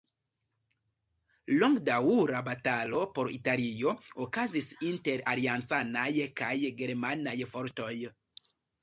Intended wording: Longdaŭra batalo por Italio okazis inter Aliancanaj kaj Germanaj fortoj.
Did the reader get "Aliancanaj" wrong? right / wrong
right